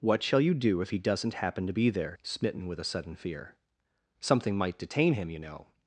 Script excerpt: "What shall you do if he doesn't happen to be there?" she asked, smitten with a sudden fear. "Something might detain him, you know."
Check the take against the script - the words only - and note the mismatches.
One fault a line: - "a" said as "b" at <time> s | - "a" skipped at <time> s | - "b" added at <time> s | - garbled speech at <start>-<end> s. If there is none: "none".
- "she asked" skipped at 2.1 s